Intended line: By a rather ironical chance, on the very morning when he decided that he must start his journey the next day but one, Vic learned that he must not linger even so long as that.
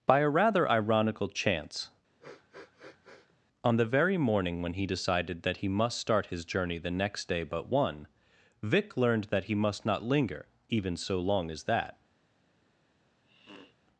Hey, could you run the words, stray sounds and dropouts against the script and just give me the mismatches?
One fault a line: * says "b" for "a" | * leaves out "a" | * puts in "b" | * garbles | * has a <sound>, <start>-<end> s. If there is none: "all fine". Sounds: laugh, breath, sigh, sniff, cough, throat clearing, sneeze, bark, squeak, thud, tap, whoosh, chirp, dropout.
* has a sniff, 2.2-3.4 s
* has a sniff, 13.2-13.8 s